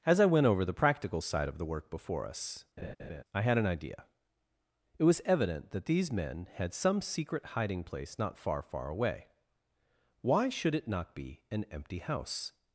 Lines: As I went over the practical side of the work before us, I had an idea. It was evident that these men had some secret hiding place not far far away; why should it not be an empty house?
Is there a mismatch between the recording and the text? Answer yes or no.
no